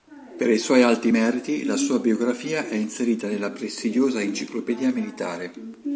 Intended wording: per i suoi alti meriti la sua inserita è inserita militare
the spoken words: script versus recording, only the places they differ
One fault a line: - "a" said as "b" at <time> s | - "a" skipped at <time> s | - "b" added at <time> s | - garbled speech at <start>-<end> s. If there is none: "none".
- "inserita" said as "biografia" at 2.0 s
- "nella prestigiosa enciclopedia" added at 3.2 s